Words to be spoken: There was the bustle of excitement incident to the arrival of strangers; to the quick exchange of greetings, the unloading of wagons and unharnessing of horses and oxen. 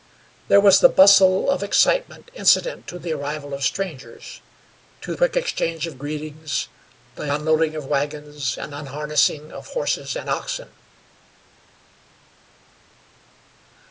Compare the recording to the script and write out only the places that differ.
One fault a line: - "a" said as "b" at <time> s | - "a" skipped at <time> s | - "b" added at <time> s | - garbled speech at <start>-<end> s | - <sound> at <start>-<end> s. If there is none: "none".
- "the" skipped at 5.1 s